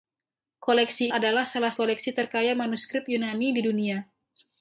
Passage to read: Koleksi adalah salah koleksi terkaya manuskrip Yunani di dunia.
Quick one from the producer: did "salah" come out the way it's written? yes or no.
yes